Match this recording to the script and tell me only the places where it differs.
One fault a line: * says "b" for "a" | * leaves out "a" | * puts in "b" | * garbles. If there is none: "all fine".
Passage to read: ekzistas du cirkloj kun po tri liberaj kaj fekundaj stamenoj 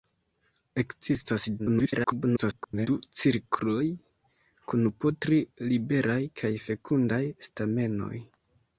* garbles